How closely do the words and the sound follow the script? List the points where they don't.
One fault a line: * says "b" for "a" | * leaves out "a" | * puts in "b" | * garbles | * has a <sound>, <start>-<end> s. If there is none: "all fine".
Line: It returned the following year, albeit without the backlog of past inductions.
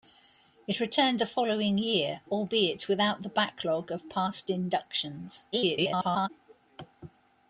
* garbles